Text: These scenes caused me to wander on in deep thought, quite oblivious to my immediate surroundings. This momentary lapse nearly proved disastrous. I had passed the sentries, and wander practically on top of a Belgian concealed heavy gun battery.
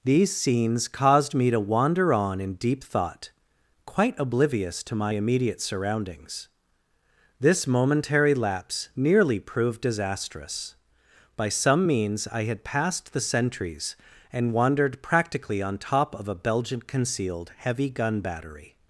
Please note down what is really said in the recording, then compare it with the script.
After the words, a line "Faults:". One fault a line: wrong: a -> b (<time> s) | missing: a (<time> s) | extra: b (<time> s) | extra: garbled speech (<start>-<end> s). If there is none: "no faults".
These scenes caused me to wander on in deep thought, quite oblivious to my immediate surroundings. This momentary lapse nearly proved disastrous. By some means I had passed the sentries, and wandered practically on top of a Belgian concealed heavy gun battery.
Faults:
extra: By some means (11.3 s)
wrong: wander -> wandered (14.5 s)